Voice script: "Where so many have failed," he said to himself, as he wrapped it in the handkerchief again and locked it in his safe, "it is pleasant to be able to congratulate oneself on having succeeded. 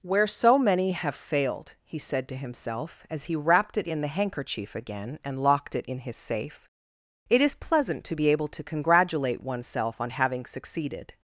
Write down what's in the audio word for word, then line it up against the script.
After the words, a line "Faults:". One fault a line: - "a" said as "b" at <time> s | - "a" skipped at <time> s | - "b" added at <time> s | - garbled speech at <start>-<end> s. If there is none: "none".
"Where so many have failed," he said to himself, as he wrapped it in the handkerchief again and locked it in his safe, "it is pleasant to be able to congratulate oneself on having succeeded.
Faults:
none